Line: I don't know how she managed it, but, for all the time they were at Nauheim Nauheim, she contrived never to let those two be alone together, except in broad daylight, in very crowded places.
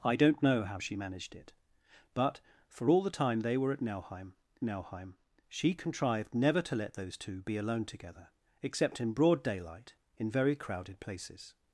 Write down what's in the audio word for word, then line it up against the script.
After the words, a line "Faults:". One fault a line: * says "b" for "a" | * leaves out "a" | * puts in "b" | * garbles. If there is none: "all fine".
I don't know how she managed it, but, for all the time they were at Nauheim Nauheim, she contrived never to let those two be alone together, except in broad daylight, in very crowded places.
Faults:
all fine